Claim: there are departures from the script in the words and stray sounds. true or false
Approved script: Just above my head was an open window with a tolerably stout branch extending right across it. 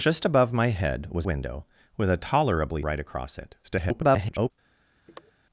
true